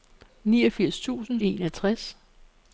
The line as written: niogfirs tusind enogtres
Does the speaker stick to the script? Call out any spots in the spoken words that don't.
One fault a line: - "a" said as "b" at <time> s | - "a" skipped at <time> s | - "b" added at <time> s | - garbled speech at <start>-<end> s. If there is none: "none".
none